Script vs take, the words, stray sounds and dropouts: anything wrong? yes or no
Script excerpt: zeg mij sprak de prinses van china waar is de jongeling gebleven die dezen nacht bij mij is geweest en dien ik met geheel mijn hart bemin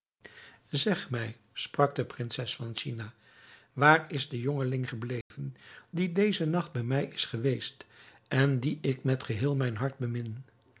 yes